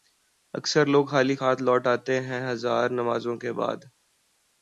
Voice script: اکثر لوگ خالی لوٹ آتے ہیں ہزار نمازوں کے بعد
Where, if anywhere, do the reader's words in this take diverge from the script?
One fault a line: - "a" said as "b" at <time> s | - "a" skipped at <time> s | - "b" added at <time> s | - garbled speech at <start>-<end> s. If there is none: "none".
- "ہاتھ" added at 1.4 s